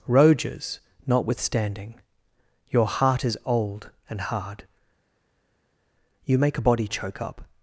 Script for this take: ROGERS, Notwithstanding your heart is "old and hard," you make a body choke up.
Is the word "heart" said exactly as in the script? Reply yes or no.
yes